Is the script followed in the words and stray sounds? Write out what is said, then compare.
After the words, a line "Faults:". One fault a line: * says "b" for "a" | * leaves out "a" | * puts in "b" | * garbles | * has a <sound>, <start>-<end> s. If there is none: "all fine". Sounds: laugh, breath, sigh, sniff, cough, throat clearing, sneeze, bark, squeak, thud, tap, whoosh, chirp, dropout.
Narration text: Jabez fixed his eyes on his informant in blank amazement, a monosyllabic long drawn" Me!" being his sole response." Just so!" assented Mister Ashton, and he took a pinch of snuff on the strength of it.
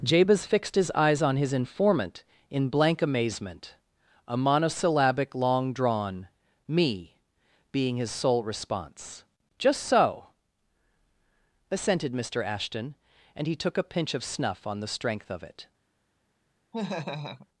Jabez fixed his eyes on his informant in blank amazement, a monosyllabic long drawn" Me!" being his sole response." Just so!" assented Mister Ashton, and he took a pinch of snuff on the strength of it.
Faults:
* has a laugh, 16.7-17.5 s